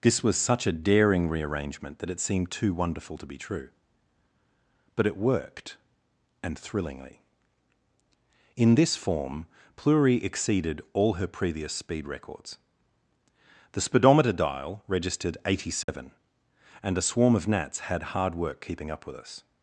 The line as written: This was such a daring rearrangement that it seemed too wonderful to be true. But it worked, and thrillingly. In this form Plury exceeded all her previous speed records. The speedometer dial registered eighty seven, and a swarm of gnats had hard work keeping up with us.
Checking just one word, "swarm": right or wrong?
right